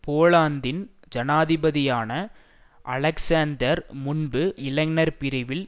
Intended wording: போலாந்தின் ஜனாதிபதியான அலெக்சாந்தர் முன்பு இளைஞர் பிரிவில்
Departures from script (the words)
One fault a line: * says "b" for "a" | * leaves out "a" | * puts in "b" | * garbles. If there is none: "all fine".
all fine